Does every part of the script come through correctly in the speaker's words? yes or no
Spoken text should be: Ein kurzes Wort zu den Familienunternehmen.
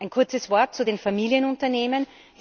yes